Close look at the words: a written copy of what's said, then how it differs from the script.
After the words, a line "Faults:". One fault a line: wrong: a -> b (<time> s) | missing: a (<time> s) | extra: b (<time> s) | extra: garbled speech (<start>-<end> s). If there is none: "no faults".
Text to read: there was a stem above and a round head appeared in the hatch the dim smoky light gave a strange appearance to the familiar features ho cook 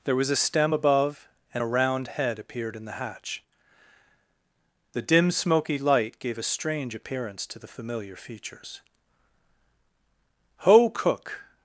there was a stem above and a round head appeared in the hatch the dim smoky light gave a strange appearance to the familiar features ho cook
Faults:
no faults